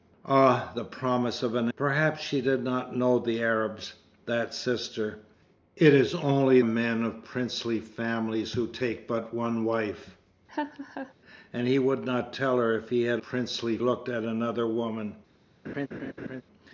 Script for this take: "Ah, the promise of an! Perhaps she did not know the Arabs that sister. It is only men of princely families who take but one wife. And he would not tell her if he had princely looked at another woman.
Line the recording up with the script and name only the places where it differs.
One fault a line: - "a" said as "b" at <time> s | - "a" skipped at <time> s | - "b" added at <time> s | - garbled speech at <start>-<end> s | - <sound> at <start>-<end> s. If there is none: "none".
- laugh at 10.5-11.1 s
- laugh at 15.6-16.4 s